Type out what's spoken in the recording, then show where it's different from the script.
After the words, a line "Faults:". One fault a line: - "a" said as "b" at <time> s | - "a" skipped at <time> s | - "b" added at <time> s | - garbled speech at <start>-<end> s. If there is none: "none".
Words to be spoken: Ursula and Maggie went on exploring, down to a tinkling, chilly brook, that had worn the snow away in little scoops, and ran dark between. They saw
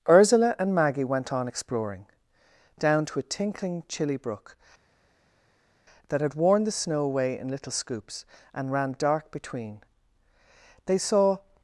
Ursula and Maggie went on exploring, down to a tinkling, chilly brook, that had worn the snow away in little scoops, and ran dark between. They saw
Faults:
none